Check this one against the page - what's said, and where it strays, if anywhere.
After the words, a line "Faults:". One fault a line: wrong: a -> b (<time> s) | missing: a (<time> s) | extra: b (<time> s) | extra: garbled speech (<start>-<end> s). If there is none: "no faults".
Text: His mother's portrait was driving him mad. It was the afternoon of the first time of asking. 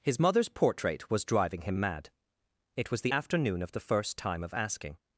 His mother's portrait was driving him mad. It was the afternoon of the first time of asking.
Faults:
no faults